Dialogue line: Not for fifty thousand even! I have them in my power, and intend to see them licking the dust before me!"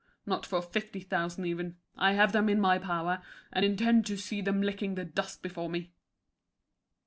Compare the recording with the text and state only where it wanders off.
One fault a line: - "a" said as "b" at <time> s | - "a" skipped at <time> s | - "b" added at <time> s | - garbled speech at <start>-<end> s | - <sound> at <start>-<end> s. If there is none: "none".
none